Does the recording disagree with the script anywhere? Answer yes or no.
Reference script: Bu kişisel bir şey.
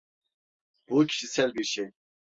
no